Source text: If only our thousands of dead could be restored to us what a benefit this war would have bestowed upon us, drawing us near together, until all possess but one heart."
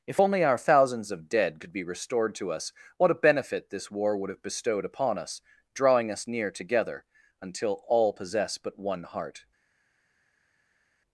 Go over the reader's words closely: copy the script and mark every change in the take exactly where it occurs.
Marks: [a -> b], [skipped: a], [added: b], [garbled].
If only our thousands of dead could be restored to us what a benefit this war would have bestowed upon us, drawing us near together, until all possess but one heart."